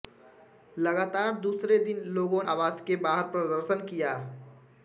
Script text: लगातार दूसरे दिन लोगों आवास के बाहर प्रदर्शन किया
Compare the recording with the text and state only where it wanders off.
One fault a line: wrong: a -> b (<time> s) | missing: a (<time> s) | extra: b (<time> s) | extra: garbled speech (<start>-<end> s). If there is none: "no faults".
no faults